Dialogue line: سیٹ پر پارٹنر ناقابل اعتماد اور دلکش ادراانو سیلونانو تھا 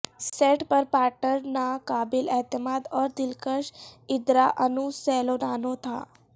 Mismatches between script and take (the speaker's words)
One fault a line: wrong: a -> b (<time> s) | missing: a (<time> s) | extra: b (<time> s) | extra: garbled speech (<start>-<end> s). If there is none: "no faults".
no faults